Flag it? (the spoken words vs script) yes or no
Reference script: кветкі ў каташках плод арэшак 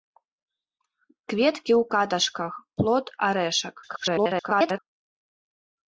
yes